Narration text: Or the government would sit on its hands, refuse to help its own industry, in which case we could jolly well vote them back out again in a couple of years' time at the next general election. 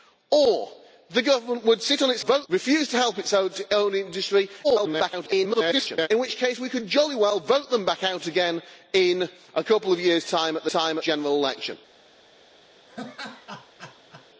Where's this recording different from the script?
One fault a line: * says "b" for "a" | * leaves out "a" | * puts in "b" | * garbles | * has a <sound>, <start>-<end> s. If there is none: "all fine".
* says "vote" for "hands"
* garbles
* says "time" for "next"
* has a laugh, 12.9-14.3 s